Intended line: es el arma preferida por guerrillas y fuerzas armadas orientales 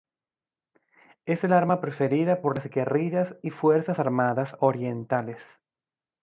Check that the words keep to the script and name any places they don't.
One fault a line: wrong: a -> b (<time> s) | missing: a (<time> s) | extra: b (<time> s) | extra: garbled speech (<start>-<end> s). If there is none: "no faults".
extra: las (2.6 s)